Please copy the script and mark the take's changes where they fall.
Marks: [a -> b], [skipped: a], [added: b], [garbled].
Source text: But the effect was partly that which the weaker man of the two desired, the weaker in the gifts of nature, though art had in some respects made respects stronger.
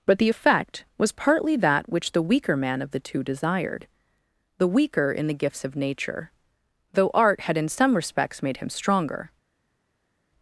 But the effect was partly that which the weaker man of the two desired, the weaker in the gifts of nature, though art had in some respects made [respects -> him] stronger.